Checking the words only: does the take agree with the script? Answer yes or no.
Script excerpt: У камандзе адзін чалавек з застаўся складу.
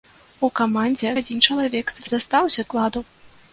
yes